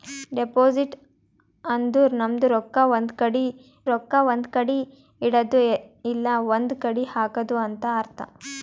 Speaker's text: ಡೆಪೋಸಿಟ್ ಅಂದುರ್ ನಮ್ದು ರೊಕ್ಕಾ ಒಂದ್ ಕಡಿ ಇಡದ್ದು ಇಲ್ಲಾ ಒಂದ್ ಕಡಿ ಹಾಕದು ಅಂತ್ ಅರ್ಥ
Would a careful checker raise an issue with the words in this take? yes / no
yes